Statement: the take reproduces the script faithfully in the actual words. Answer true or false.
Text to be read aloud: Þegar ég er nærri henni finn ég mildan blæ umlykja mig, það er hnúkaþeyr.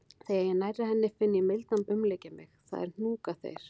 false